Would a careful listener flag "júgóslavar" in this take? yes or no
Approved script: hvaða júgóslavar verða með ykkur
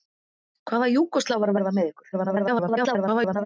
no